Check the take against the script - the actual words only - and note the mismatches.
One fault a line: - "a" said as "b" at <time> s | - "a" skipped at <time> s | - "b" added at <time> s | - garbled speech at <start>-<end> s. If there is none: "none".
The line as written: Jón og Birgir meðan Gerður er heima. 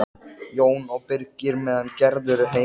none